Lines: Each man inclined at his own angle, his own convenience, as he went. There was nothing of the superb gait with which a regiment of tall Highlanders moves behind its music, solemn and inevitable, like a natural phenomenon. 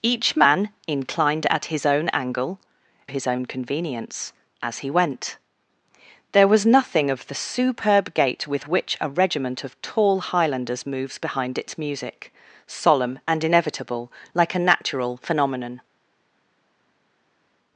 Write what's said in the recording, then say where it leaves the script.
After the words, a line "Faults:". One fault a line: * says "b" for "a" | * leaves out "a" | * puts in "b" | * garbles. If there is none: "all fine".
Each man inclined at his own angle, his own convenience, as he went. There was nothing of the superb gait with which a regiment of tall Highlanders moves behind its music, solemn and inevitable, like a natural phenomenon.
Faults:
all fine